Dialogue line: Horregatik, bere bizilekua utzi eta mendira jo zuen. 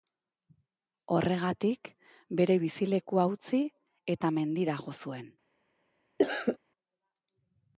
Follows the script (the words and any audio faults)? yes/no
no